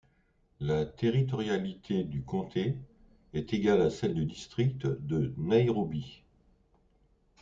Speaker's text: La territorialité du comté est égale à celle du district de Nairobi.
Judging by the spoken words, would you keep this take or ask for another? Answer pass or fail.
pass